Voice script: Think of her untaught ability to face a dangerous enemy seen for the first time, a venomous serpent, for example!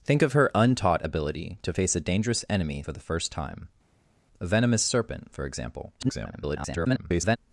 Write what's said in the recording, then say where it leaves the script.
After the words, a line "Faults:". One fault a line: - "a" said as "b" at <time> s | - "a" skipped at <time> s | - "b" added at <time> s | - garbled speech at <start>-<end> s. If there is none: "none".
Think of her untaught ability to face a dangerous enemy for the first time, a venomous serpent, for example! [garbled]
Faults:
- "seen" skipped at 2.8 s
- garbled speech at 6.0-7.4 s